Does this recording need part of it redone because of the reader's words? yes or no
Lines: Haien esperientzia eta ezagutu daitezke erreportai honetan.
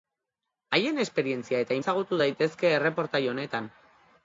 no